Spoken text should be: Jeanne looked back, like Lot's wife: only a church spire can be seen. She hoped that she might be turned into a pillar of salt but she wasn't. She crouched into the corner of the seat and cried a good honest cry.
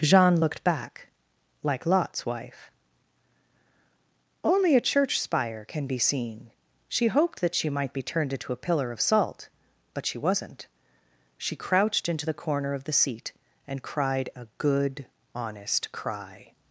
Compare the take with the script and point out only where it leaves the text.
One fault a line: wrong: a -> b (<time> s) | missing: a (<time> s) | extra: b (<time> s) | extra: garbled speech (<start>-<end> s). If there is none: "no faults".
no faults